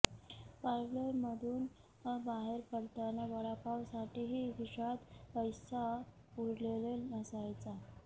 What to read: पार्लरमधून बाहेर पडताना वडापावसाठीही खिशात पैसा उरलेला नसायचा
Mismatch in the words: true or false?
false